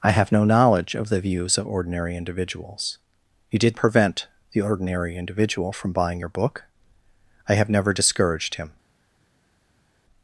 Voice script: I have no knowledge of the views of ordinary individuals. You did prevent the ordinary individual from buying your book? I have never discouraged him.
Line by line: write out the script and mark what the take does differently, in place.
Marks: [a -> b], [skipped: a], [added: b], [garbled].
I have no knowledge of the views of ordinary individuals. You did prevent the ordinary individual from buying your book? I have never discouraged him.